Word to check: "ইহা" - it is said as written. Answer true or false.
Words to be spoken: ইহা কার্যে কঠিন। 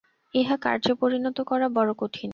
true